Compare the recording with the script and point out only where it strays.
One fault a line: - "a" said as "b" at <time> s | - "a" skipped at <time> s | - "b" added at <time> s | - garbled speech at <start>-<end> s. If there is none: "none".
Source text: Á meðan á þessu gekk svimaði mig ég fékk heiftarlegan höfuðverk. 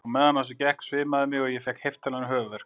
- "og" added at 1.4 s